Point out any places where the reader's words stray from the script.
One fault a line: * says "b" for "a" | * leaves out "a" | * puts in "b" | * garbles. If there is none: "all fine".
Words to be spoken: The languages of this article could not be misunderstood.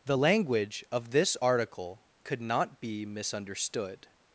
* says "language" for "languages"